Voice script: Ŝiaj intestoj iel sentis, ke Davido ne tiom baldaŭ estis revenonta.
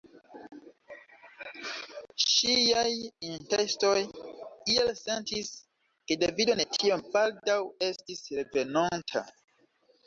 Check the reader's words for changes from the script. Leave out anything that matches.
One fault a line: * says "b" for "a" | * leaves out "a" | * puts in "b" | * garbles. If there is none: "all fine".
all fine